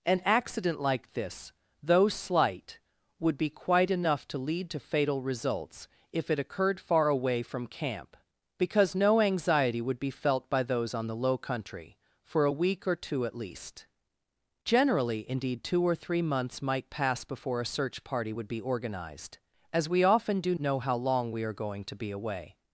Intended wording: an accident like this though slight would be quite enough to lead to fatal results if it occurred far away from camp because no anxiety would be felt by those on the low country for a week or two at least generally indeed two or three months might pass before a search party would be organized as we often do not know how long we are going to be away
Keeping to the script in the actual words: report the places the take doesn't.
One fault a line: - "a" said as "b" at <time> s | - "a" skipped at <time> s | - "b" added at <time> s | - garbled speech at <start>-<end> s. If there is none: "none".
- "not" skipped at 20.5 s